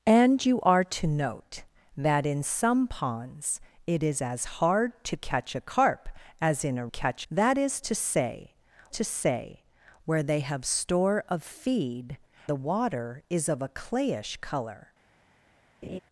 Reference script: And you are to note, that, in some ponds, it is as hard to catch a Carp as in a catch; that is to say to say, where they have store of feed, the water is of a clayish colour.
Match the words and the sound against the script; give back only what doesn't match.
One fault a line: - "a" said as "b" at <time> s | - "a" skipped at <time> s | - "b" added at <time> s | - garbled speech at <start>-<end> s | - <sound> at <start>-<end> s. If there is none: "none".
- laugh at 15.8-16.0 s